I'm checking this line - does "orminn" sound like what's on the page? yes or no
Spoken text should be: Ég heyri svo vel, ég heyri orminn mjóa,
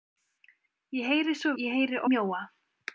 no